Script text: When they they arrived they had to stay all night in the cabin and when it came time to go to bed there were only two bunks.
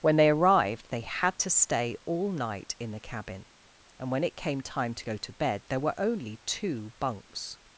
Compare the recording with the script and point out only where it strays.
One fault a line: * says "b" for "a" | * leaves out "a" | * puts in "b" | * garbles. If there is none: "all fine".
* leaves out "they"